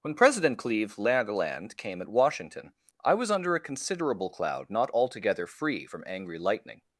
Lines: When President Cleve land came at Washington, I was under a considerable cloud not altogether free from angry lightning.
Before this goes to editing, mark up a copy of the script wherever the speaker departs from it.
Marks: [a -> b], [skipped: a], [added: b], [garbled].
When President Cleve land came at Washington, I was under a considerable cloud not altogether free from angry lightning.